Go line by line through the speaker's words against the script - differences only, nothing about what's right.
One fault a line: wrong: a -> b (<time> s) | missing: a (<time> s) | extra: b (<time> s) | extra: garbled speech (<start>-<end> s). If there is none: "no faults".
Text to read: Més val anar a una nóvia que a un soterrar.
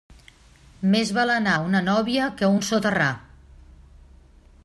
no faults